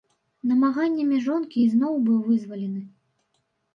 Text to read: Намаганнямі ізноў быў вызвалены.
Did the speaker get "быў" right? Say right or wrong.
right